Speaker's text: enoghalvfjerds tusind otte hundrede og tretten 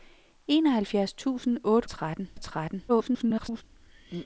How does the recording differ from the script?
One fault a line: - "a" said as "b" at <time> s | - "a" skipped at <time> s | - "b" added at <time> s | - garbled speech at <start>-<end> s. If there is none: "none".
- "hundrede" said as "tretten" at 1.9 s
- garbled speech at 2.9-3.6 s